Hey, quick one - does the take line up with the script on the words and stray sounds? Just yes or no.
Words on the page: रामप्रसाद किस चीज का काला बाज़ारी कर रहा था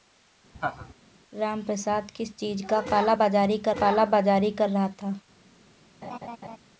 no